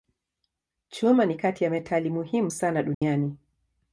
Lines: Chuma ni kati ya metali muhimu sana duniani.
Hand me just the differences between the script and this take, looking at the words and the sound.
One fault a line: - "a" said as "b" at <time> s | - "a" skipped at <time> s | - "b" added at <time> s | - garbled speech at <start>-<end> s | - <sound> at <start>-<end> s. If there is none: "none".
- dropout at 2.9-3.0 s